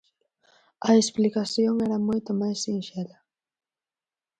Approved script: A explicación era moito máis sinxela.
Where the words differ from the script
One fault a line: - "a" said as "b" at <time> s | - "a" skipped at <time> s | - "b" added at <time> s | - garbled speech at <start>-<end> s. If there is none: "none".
none